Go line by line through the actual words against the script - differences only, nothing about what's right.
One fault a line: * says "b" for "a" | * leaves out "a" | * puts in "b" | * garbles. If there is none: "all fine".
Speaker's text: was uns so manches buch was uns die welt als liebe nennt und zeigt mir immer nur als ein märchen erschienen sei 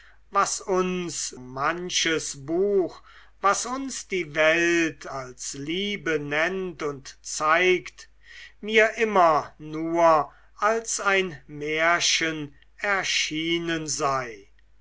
* leaves out "so"